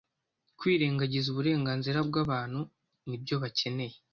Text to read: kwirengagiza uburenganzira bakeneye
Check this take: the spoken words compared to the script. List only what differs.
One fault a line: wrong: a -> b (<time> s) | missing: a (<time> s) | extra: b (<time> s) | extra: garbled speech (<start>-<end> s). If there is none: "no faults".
extra: bw'abantu n'ibyo (2.1 s)